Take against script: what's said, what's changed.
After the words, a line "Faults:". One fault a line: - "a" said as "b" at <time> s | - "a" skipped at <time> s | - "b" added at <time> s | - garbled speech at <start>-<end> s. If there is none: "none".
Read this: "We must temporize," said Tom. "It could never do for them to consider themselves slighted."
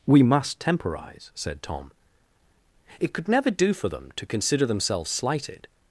"We must temporize," said Tom. "It could never do for them to consider themselves slighted."
Faults:
none